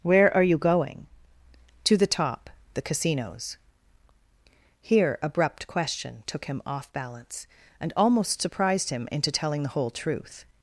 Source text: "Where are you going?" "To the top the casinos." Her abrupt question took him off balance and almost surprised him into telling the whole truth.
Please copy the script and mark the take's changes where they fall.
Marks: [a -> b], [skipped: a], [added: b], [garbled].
"Where are you going?" "To the top the casinos." [Her -> Here] abrupt question took him off balance and almost surprised him into telling the whole truth.